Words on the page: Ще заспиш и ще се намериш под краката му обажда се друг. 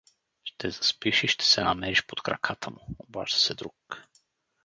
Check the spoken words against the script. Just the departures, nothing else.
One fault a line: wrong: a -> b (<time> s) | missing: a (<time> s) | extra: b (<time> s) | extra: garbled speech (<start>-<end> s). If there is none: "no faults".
no faults